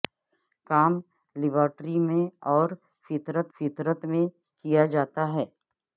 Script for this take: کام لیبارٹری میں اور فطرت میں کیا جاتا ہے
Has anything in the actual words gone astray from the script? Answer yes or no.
yes